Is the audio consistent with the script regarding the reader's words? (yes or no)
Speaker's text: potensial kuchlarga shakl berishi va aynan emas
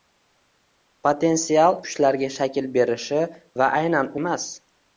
yes